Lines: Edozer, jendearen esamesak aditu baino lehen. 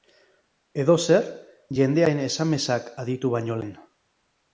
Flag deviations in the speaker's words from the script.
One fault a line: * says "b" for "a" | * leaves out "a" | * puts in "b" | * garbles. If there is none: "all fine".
all fine